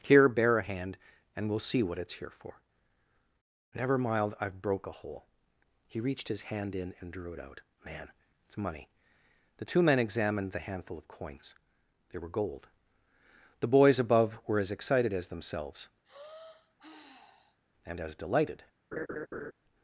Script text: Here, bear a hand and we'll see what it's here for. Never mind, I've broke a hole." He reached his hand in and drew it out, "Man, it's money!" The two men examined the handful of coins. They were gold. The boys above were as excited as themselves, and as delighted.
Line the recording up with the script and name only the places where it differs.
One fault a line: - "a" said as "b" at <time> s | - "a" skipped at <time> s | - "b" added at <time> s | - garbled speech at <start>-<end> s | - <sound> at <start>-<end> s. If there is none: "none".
- "mind" said as "mild" at 4.0 s
- sigh at 16.0-17.6 s
- laugh at 18.9-19.5 s